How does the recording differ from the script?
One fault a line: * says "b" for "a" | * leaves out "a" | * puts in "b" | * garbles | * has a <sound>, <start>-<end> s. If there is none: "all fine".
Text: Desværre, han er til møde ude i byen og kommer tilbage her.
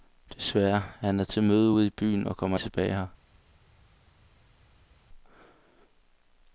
all fine